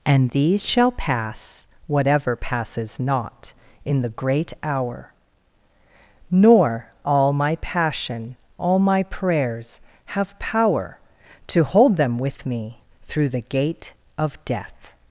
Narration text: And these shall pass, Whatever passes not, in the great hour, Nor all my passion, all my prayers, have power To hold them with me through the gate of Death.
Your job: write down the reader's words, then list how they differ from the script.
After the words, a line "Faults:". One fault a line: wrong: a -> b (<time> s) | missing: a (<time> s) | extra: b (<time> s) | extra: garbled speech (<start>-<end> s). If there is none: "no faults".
And these shall pass, Whatever passes not, in the great hour, Nor all my passion, all my prayers, have power To hold them with me through the gate of Death.
Faults:
no faults